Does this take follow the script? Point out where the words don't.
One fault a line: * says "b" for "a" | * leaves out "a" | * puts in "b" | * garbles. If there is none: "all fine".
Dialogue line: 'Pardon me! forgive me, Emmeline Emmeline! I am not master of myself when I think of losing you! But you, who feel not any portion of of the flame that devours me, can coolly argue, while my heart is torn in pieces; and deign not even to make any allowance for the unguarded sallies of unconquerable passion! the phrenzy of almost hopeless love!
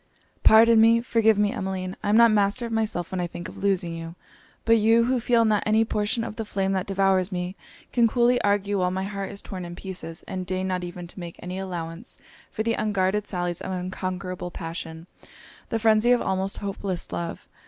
* leaves out "Emmeline"
* leaves out "of"